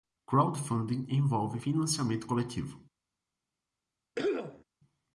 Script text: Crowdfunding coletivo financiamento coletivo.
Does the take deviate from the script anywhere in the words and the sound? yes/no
yes